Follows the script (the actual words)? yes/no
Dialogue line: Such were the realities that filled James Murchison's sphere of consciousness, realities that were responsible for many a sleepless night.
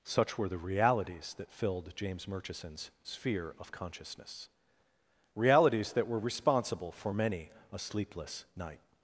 yes